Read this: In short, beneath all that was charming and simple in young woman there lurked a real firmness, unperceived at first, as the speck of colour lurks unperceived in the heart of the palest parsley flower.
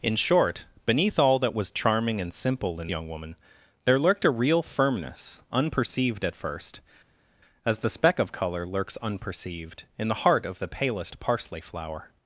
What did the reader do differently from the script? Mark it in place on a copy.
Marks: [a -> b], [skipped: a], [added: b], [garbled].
In short, beneath all that was charming and simple in young woman there lurked a real firmness, unperceived at first, as the speck of colour lurks unperceived in the heart of the palest parsley flower.